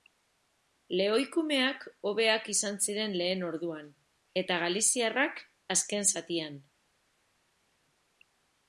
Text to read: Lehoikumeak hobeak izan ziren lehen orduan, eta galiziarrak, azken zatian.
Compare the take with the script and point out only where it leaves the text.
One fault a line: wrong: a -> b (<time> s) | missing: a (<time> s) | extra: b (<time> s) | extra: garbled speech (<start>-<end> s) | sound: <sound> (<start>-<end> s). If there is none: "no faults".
no faults